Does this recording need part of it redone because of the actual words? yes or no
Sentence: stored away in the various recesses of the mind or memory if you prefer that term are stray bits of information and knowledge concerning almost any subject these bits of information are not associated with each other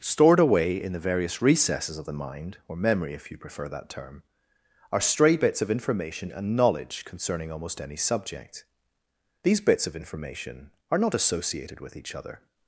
no